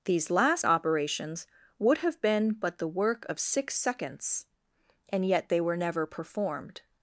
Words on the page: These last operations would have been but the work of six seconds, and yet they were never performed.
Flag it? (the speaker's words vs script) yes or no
no